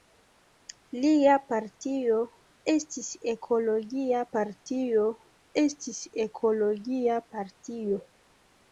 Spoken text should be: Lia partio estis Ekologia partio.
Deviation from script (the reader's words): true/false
true